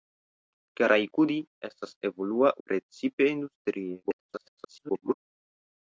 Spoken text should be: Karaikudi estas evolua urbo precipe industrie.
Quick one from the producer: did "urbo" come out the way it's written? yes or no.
no